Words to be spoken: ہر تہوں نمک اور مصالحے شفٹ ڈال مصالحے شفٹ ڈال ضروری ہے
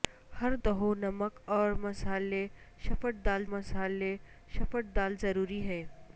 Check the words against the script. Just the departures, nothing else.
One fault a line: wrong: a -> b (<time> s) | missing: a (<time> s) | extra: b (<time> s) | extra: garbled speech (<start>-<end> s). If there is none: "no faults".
no faults